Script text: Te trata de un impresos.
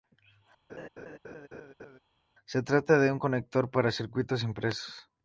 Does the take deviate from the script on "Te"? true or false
true